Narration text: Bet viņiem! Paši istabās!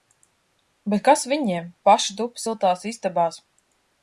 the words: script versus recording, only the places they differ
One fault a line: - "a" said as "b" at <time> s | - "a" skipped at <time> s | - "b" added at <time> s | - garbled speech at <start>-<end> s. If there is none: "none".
- "kas" added at 1.1 s
- "tup siltās" added at 2.2 s